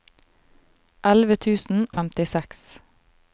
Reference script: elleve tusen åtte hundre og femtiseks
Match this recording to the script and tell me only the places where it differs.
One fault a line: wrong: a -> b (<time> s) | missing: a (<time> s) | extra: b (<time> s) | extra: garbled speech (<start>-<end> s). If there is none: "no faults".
missing: åtte hundre (1.9 s)